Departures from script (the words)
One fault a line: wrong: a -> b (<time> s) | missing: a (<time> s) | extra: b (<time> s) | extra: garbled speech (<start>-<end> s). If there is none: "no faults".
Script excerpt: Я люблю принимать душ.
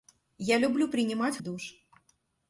no faults